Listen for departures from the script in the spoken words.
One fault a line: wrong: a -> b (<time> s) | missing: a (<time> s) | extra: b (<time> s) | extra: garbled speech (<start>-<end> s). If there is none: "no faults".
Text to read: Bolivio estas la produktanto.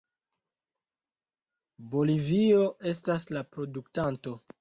no faults